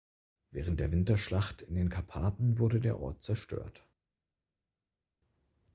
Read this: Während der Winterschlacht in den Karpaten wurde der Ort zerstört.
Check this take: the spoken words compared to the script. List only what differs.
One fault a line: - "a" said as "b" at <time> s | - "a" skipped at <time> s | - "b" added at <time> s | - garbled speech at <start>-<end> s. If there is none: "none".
none